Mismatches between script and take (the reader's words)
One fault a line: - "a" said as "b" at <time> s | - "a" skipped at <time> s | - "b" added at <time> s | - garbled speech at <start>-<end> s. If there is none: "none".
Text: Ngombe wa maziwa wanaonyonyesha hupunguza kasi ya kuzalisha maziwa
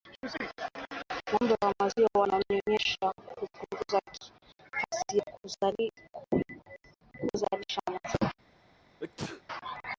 none